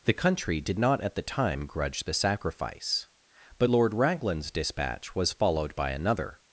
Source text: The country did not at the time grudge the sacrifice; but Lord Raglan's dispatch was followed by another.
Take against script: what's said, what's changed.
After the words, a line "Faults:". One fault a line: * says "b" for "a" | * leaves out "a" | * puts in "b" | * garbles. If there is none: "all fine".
The country did not at the time grudge the sacrifice; but Lord Raglan's dispatch was followed by another.
Faults:
all fine